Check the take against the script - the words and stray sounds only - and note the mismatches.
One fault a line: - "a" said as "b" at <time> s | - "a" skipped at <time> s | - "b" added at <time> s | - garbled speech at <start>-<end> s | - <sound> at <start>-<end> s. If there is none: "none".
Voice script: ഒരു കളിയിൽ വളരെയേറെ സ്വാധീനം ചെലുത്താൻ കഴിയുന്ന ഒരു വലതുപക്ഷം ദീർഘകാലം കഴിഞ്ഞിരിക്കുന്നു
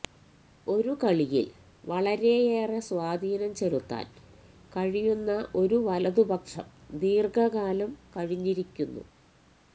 none